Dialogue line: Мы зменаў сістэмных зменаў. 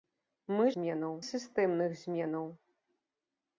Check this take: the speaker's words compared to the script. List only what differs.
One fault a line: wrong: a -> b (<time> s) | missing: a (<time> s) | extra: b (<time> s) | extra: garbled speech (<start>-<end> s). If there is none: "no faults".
no faults